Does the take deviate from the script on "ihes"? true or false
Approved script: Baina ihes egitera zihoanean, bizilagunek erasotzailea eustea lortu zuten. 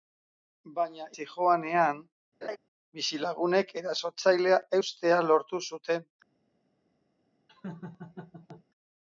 true